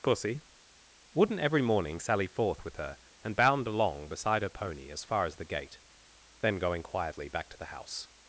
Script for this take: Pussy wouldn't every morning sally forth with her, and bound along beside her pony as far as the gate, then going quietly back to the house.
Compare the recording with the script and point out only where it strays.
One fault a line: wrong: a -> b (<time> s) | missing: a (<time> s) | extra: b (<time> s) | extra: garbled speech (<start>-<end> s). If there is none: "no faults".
no faults